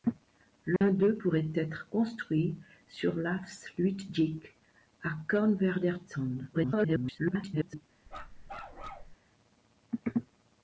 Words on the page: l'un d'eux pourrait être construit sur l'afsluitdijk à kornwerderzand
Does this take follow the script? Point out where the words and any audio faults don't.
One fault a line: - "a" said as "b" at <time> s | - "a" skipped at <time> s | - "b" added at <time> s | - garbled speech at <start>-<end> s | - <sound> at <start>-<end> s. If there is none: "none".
- dropout at 0.8-0.8 s
- garbled speech at 6.5-7.8 s
- bark at 8.1-9.2 s